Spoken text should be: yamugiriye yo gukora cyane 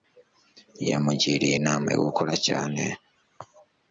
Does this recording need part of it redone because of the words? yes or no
yes